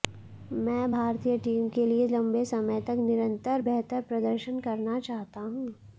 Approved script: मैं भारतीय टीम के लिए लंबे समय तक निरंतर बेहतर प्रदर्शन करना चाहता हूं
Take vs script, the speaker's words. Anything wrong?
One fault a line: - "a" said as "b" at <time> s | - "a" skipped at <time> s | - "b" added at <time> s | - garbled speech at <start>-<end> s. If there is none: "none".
none